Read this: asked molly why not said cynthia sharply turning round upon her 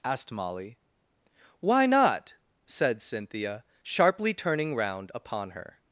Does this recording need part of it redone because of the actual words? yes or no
no